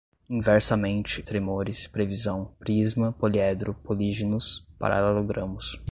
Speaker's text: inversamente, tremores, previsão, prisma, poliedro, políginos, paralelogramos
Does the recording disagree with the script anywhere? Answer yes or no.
no